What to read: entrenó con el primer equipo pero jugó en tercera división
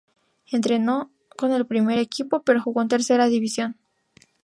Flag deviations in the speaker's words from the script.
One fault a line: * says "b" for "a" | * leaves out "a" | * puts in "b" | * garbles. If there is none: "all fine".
all fine